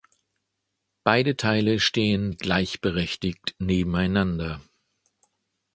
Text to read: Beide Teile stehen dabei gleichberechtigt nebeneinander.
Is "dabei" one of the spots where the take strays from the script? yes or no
yes